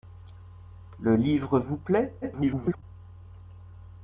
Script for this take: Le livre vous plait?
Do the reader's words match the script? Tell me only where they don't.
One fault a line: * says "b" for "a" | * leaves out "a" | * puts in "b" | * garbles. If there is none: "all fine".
* garbles